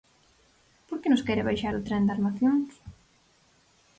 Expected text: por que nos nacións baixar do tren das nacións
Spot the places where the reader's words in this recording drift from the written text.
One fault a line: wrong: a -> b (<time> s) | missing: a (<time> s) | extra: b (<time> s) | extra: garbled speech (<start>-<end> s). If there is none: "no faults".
wrong: nacións -> quere (1.3 s)